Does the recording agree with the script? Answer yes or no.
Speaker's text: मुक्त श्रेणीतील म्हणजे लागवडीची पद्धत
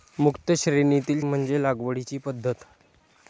yes